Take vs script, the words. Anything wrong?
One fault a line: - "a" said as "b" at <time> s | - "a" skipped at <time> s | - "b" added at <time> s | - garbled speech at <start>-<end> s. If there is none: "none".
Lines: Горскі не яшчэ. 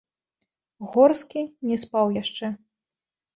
- "спаў" added at 1.8 s